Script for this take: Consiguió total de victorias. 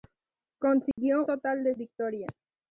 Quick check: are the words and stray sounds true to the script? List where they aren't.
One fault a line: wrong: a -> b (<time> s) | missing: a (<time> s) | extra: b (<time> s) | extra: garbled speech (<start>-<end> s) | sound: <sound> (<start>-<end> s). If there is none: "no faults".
sound: dropout (0.9-1.0 s)